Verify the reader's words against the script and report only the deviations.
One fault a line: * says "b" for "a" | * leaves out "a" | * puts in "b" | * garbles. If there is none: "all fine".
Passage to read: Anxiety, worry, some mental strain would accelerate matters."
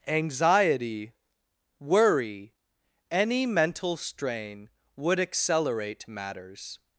* says "any" for "some"